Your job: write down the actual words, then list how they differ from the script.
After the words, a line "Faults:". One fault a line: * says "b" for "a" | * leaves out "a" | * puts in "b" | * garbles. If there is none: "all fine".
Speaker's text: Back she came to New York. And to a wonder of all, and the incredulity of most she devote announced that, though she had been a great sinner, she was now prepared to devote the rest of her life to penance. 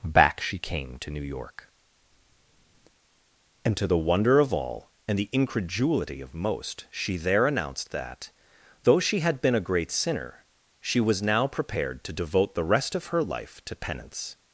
Back she came to New York. And to the wonder of all, and the incredulity of most she there announced that, though she had been a great sinner, she was now prepared to devote the rest of her life to penance.
Faults:
* says "the" for "a"
* says "there" for "devote"